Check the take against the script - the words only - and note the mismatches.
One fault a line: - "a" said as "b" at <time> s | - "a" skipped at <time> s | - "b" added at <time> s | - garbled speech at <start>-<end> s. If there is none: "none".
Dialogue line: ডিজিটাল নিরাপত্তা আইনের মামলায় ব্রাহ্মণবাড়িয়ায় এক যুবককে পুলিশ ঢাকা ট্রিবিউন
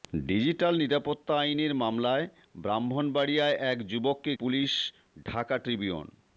none